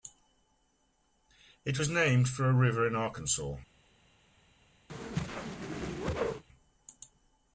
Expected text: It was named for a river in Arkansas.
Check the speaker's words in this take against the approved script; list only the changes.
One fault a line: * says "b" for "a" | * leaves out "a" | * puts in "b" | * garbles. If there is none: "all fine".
all fine